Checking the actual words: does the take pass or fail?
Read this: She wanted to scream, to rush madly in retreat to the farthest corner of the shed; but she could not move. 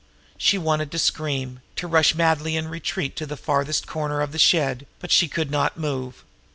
pass